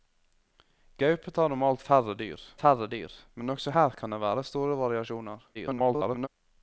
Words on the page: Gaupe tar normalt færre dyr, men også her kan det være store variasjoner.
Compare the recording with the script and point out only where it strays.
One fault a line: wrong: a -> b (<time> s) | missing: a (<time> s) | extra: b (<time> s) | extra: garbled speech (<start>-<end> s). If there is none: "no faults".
extra: færre dyr (2.6 s)
extra: garbled speech (5.5-6.3 s)